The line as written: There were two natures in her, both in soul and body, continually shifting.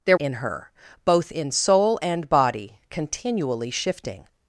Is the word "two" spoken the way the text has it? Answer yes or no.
no